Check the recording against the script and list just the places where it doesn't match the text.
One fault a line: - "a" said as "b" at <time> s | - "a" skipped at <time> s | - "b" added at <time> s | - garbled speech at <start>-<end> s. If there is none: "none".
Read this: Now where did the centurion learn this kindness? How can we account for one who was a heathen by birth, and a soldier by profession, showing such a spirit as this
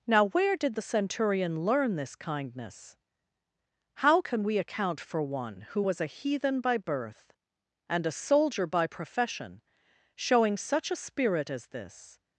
none